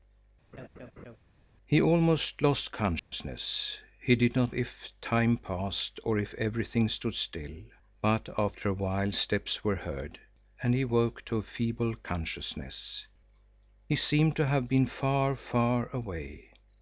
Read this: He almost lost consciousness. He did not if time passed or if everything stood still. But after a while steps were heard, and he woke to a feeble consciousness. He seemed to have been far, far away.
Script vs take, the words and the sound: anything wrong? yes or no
yes